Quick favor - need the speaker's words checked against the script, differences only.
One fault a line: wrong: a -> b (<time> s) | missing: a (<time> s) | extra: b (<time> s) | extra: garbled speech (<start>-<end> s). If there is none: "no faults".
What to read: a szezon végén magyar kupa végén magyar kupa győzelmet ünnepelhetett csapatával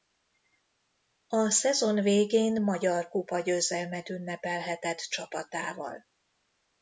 missing: végén magyar kupa (3.4 s)